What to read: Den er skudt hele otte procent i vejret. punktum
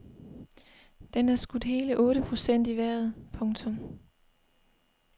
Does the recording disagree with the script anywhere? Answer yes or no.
no